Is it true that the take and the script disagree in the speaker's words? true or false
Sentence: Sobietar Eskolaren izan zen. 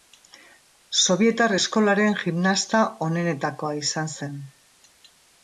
true